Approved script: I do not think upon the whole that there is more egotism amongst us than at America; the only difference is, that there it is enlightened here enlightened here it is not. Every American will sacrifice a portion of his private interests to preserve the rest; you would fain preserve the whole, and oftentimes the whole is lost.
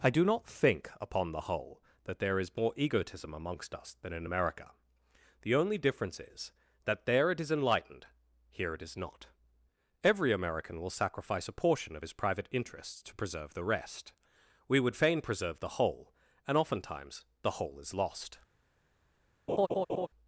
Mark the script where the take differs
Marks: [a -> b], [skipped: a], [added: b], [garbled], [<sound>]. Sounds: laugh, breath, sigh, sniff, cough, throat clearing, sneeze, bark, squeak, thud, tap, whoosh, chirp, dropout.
I do not think upon the whole that there is more egotism amongst us than [at -> in] America; the only difference is, that there it is enlightened here [skipped: enlightened here] it is not. Every American will sacrifice a portion of his private interests to preserve the rest; [you -> we] would fain preserve the whole, and oftentimes the whole is lost. [laugh]